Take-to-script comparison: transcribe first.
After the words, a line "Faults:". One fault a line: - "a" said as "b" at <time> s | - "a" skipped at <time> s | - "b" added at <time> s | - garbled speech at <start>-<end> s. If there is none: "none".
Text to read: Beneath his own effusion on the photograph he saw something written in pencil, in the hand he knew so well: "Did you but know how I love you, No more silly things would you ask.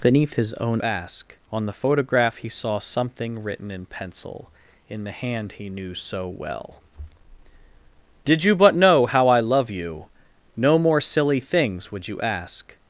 Beneath his own ask on the photograph he saw something written in pencil, in the hand he knew so well: "Did you but know how I love you, No more silly things would you ask.
Faults:
- "effusion" said as "ask" at 0.8 s